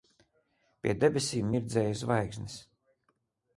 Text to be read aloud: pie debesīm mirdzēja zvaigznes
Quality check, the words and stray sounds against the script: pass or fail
pass